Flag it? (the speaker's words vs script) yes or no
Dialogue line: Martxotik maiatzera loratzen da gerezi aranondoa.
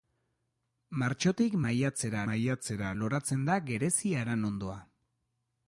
yes